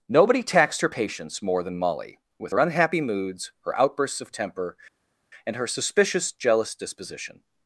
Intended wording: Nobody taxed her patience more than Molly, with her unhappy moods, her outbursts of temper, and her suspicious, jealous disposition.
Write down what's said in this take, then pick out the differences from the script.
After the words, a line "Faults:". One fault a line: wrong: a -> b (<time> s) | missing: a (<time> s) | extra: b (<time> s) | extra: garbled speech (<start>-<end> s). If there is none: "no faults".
Nobody taxed her patience more than Molly, with her unhappy moods, her outbursts of temper, and her suspicious, jealous disposition.
Faults:
no faults